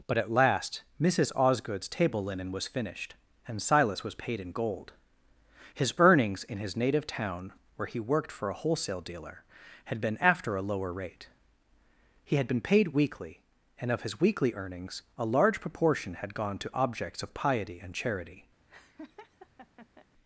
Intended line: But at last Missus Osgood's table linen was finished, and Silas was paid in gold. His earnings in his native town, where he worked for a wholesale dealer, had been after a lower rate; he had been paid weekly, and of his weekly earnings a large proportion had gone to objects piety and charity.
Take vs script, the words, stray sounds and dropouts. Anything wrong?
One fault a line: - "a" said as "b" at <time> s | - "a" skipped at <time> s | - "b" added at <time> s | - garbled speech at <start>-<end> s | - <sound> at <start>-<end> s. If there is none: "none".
- "of" added at 17.2 s
- laugh at 18.7-20.1 s